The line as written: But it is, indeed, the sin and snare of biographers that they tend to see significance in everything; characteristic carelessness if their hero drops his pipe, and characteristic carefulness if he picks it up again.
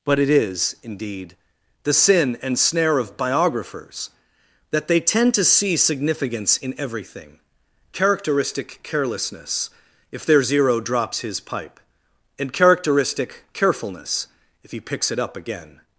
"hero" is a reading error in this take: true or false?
true